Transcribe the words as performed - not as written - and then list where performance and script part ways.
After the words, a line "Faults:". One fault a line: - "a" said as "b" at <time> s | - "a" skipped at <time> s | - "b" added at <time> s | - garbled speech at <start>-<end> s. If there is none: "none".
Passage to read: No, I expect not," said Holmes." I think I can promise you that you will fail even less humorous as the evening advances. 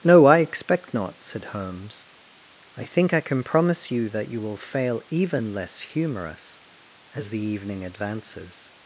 No, I expect not," said Holmes." I think I can promise you that you will fail even less humorous as the evening advances.
Faults:
none